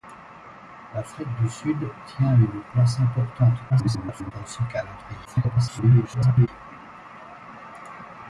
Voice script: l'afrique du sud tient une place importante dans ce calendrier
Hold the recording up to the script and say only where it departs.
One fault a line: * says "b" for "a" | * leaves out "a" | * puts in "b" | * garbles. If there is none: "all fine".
* garbles
* garbles